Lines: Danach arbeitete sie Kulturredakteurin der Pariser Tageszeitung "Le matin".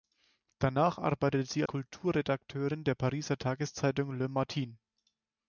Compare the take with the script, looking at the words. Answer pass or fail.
pass